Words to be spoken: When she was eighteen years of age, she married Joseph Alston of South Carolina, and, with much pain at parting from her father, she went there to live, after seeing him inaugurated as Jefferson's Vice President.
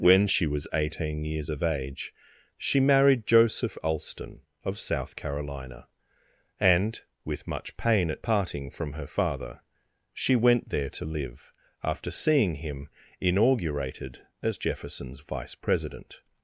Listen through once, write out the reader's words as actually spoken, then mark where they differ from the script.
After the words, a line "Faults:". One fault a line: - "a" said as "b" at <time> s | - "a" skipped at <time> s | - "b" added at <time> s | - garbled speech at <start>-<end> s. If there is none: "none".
When she was eighteen years of age, she married Joseph Alston of South Carolina, and, with much pain at parting from her father, she went there to live, after seeing him inaugurated as Jefferson's Vice President.
Faults:
none